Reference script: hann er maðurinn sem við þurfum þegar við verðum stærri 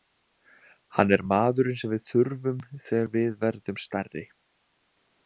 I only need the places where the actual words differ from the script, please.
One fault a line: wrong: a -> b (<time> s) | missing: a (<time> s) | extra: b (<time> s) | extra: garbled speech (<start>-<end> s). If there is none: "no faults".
no faults